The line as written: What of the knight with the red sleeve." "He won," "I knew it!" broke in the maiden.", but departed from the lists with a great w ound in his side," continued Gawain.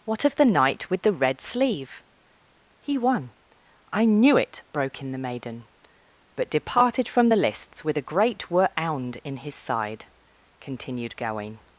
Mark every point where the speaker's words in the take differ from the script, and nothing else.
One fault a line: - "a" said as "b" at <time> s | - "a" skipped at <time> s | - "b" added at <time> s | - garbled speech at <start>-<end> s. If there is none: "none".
- "w" said as "were" at 8.5 s